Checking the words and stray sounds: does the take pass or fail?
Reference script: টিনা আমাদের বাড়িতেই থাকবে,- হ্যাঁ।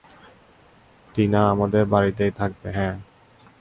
pass